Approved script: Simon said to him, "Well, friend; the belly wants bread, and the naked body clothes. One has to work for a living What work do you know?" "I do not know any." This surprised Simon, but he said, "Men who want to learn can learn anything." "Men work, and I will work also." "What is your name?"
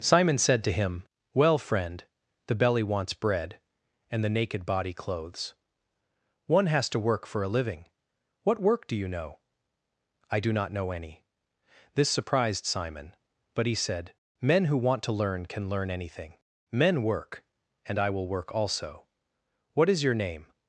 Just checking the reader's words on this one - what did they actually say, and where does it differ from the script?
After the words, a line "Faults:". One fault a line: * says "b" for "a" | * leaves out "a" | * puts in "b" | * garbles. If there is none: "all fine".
Simon said to him, "Well, friend; the belly wants bread, and the naked body clothes. One has to work for a living What work do you know?" "I do not know any." This surprised Simon, but he said, "Men who want to learn can learn anything." "Men work, and I will work also." "What is your name?"
Faults:
all fine